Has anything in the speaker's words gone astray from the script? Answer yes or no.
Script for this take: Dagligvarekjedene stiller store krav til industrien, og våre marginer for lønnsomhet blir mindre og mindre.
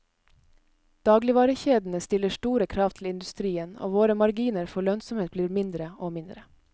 no